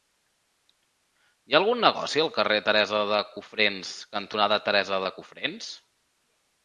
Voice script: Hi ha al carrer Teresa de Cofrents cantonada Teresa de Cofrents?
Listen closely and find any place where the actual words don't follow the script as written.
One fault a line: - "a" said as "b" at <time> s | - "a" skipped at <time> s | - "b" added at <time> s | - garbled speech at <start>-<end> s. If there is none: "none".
- "algun negoci" added at 1.6 s